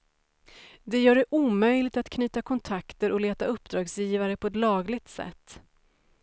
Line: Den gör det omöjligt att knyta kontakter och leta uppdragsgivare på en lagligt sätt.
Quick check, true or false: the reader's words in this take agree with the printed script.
false